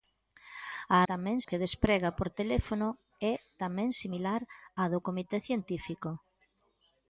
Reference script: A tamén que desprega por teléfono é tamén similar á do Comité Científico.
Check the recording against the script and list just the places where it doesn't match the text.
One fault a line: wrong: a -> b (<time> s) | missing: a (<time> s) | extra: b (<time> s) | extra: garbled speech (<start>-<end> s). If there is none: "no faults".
no faults